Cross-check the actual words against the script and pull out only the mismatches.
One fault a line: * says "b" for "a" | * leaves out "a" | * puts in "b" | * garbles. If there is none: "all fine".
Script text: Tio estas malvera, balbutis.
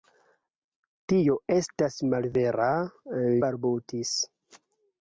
all fine